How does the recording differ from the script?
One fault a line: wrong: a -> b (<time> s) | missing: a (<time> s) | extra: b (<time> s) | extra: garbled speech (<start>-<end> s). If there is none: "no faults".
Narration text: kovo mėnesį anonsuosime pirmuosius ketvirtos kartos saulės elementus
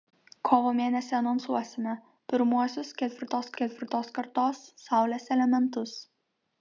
extra: ketvirtos (3.6 s)